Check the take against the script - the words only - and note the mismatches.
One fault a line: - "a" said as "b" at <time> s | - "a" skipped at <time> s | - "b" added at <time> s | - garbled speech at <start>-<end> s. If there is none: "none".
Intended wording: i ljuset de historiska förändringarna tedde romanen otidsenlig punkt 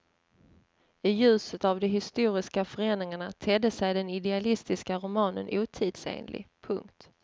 - "av" added at 1.6 s
- "sig den idealistiska" added at 3.7 s